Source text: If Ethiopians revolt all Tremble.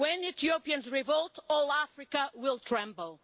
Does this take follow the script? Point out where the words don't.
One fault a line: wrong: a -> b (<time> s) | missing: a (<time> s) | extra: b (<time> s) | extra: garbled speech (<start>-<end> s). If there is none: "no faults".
wrong: If -> When (0.0 s)
extra: Africa will (1.7 s)